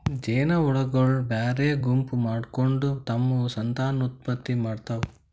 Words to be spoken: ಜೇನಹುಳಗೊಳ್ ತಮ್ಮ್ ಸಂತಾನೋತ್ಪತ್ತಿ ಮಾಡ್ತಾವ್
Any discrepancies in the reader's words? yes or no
yes